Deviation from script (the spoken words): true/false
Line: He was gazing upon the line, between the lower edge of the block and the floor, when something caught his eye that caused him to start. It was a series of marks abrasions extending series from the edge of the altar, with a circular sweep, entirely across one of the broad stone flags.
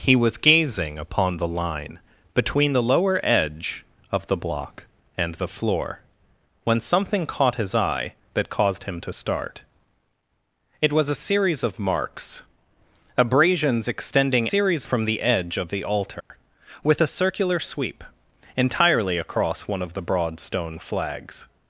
false